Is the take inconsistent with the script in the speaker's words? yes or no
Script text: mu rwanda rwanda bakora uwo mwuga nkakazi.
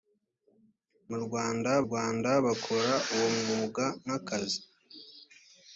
no